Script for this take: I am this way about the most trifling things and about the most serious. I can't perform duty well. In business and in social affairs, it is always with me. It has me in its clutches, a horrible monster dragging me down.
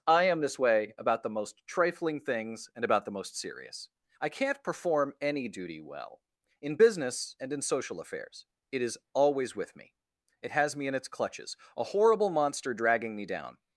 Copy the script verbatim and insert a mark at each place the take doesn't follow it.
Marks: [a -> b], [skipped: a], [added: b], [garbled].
I am this way about the most trifling things and about the most serious. I can't perform [added: any] duty well. In business and in social affairs, it is always with me. It has me in its clutches, a horrible monster dragging me down.